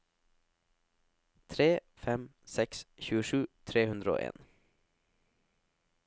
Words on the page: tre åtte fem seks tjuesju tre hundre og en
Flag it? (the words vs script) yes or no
yes